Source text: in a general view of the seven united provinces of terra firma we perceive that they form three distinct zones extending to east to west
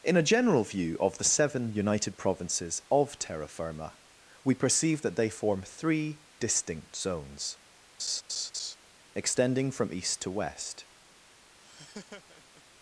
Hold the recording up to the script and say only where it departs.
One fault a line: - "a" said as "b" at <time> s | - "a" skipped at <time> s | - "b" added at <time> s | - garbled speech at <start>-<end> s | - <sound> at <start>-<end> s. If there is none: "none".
- laugh at 8.0-8.8 s
- "to" said as "from" at 9.7 s
- laugh at 11.6-12.6 s